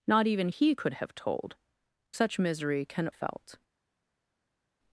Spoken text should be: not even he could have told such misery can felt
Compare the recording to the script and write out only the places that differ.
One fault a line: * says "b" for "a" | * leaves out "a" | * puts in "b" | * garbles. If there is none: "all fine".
all fine